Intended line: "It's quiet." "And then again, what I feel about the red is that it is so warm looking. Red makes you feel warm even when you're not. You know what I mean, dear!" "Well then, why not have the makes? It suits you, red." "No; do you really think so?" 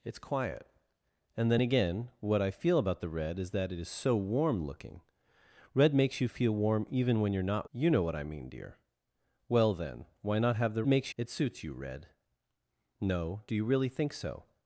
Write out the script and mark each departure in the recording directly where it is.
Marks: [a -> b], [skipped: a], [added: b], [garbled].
"It's quiet." "And then again, what I feel about the red is that it is so warm looking. Red makes you feel warm even when you're not. You know what I mean, dear!" "Well then, why not have the makes? It suits you, red." "No; do you really think so?"